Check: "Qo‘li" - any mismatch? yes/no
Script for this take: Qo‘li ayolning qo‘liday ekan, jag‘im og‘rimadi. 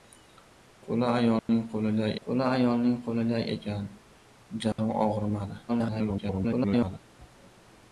no